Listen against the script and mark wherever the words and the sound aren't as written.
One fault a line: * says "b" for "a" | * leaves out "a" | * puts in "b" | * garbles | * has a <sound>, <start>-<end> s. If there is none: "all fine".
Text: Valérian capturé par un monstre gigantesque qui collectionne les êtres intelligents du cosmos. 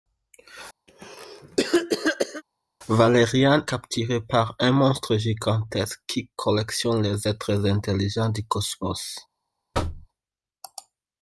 * has a cough, 0.9-2.4 s
* has a thud, 9.7-10.1 s